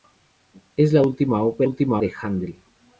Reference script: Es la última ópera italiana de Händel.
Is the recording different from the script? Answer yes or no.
yes